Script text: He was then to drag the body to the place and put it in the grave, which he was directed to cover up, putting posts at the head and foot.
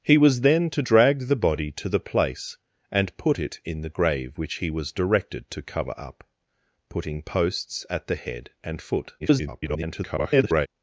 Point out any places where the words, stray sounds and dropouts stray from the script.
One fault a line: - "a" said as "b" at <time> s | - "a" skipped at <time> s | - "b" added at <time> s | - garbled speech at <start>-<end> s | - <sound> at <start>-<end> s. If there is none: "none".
- garbled speech at 9.2-10.7 s